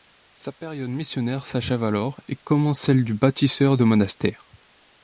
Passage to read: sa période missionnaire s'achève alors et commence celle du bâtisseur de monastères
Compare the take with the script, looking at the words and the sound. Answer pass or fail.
pass